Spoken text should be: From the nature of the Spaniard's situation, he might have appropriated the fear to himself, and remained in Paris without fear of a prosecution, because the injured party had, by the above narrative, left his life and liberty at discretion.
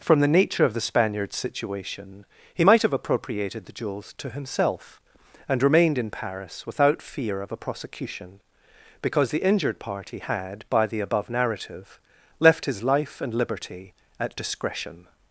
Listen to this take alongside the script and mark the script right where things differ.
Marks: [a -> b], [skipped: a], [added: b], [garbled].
From the nature of the Spaniard's situation, he might have appropriated the [fear -> jewels] to himself, and remained in Paris without fear of a prosecution, because the injured party had, by the above narrative, left his life and liberty at discretion.